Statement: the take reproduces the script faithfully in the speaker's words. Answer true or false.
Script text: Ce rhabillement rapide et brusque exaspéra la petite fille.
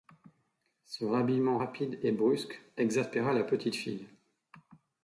true